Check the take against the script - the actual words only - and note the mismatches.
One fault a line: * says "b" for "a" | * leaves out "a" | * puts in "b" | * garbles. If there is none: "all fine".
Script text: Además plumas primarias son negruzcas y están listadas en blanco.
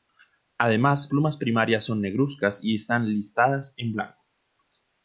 all fine